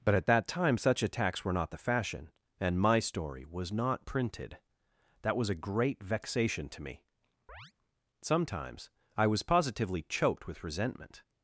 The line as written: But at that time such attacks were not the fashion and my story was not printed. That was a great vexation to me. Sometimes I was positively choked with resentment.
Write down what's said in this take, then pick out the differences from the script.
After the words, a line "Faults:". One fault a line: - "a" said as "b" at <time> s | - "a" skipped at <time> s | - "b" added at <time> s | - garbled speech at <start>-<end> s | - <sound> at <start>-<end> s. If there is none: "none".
But at that time such attacks were not the fashion and my story was not printed. That was a great vexation to me. Sometimes I was positively choked with resentment.
Faults:
- chirp at 7.5-7.7 s